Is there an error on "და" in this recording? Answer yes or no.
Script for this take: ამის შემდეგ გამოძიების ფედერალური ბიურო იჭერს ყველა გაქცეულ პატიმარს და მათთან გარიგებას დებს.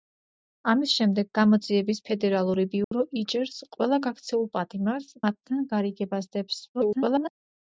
yes